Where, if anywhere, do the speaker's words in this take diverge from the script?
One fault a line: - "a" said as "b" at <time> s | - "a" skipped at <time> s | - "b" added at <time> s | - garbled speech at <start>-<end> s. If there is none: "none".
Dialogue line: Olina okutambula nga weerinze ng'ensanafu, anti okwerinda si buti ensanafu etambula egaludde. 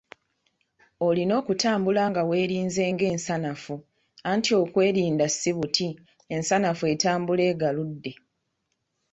none